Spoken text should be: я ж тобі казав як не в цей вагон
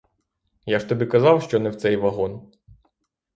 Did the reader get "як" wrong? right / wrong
wrong